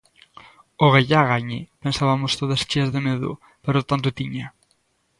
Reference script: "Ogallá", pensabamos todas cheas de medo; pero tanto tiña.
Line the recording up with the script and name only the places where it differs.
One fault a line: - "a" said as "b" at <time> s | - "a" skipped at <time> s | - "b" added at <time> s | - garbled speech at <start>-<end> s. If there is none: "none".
- "gañe" added at 1.3 s